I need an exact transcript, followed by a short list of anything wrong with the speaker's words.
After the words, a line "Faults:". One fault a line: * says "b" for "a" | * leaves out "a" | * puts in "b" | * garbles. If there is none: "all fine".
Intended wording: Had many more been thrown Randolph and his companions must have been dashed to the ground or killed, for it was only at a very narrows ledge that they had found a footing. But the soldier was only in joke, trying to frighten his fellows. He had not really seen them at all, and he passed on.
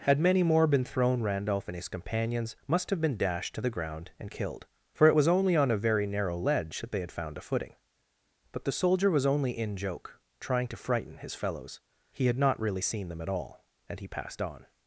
Had many more been thrown Randolph and his companions must have been dashed to the ground and killed, for it was only on a very narrow ledge that they had found a footing. But the soldier was only in joke, trying to frighten his fellows. He had not really seen them at all, and he passed on.
Faults:
* says "and" for "or"
* says "on" for "at"
* says "narrow" for "narrows"